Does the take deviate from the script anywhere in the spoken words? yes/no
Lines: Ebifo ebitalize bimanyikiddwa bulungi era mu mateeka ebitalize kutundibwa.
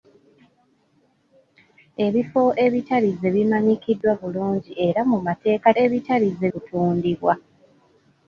no